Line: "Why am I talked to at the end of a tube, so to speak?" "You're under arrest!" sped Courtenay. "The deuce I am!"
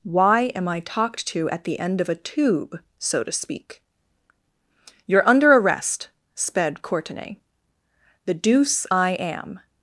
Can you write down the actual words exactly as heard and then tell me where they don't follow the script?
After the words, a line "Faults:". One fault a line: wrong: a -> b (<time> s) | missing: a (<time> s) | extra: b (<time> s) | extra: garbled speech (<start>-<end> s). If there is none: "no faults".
"Why am I talked to at the end of a tube, so to speak?" "You're under arrest!" sped Courtenay. "The deuce I am!"
Faults:
no faults